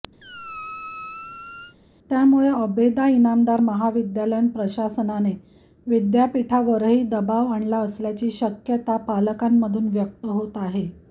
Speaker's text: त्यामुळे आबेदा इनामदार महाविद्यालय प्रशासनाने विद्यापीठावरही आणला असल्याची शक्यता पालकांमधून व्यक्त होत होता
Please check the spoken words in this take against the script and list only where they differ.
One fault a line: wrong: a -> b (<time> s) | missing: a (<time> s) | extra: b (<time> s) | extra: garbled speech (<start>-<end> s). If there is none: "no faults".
extra: दबाव (7.1 s)
wrong: होता -> आहे (10.6 s)